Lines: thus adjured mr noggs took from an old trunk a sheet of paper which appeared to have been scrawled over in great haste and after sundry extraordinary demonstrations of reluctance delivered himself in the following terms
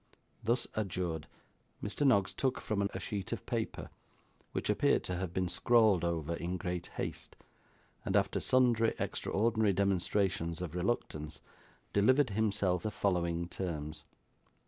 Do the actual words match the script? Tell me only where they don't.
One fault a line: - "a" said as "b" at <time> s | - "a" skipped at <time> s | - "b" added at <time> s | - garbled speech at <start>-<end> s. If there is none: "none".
- "old trunk" skipped at 2.9 s
- "in" skipped at 12.9 s